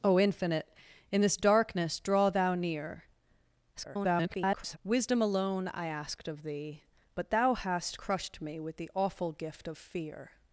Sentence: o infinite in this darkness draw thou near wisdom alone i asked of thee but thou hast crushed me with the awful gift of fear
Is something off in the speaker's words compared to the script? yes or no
yes